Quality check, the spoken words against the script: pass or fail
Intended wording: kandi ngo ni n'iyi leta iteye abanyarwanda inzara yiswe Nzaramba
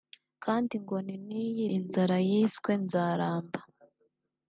fail